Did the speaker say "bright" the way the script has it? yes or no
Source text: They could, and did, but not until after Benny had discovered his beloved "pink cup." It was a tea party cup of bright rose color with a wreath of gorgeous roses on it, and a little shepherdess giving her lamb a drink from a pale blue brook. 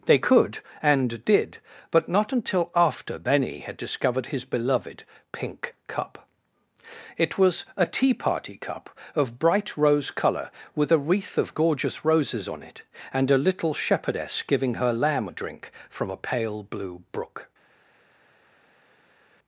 yes